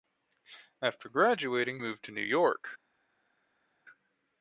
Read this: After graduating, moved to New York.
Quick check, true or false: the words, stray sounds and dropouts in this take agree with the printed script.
true